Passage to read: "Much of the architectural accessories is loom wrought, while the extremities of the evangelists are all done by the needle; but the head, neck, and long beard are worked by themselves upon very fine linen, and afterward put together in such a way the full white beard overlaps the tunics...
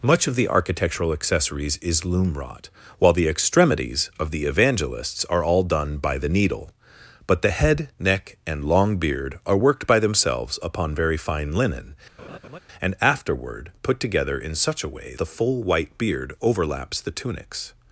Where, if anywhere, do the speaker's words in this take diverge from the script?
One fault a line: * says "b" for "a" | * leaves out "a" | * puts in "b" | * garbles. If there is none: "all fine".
all fine